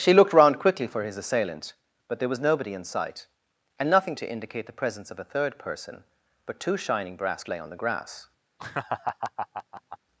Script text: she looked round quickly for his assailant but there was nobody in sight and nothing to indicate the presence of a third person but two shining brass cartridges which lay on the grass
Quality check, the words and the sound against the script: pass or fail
fail